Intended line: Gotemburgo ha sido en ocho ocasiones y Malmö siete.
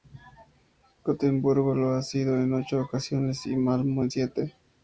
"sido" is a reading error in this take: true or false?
false